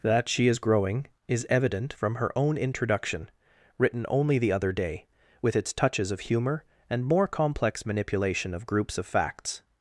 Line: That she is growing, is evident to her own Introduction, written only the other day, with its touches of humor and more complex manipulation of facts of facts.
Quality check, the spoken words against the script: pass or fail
fail